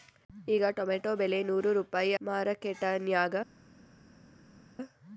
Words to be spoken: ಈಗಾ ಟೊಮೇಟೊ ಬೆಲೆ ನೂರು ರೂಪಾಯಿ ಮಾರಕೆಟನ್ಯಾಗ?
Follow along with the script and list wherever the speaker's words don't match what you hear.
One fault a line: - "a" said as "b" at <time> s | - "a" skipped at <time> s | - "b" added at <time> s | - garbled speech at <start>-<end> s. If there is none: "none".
none